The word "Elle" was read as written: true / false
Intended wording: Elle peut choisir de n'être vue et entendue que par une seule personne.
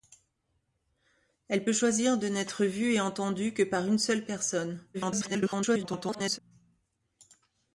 true